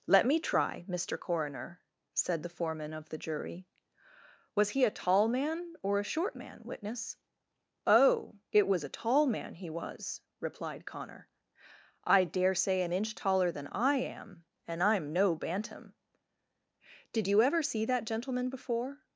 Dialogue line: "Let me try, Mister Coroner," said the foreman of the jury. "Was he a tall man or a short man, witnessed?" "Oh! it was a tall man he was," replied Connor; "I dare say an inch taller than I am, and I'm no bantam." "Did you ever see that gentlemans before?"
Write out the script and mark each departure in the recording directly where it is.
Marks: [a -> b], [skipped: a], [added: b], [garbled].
"Let me try, Mister Coroner," said the foreman of the jury. "Was he a tall man or a short man, [witnessed?" -> witness] "Oh! it was a tall man he was," replied Connor; "I dare say an inch taller than I am, and I'm no bantam." "Did you ever see that [gentlemans -> gentleman] before?"